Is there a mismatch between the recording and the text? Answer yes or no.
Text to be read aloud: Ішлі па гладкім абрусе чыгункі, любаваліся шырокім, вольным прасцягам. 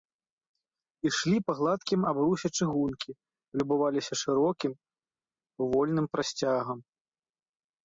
no